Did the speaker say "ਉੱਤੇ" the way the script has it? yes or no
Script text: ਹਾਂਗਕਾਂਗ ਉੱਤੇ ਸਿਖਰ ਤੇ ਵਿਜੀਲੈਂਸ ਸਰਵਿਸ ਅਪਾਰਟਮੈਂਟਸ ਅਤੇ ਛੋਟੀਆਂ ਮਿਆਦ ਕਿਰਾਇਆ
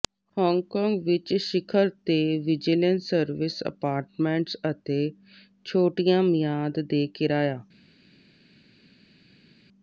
no